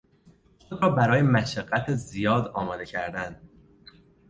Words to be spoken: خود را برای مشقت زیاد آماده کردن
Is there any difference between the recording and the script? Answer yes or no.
no